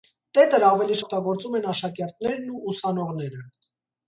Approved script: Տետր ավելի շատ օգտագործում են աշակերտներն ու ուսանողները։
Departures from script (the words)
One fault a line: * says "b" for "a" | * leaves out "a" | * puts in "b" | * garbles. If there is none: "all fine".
* leaves out "շատ"